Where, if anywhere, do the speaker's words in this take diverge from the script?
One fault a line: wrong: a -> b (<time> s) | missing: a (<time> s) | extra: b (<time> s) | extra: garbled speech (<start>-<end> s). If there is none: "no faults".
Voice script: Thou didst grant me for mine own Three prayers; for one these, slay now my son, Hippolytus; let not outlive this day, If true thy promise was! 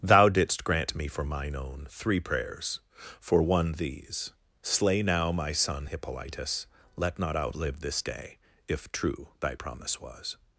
no faults